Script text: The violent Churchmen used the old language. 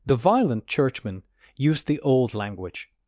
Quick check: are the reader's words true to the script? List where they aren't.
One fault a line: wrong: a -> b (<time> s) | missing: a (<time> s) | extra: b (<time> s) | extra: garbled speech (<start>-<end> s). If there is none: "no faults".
no faults